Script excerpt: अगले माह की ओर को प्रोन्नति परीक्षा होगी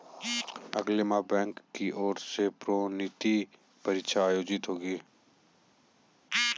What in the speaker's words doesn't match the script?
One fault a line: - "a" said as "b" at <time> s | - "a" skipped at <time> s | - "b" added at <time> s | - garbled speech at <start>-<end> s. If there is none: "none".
- "बैंक" added at 1.3 s
- "को" said as "से" at 2.2 s
- "आयोजित" added at 4.3 s